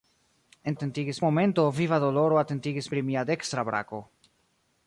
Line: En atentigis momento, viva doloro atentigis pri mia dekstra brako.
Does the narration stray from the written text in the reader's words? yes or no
no